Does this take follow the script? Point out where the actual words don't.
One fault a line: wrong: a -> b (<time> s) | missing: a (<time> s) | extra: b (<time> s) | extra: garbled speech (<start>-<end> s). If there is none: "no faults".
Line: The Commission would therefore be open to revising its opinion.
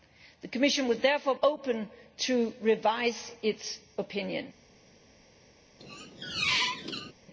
missing: be (1.4 s)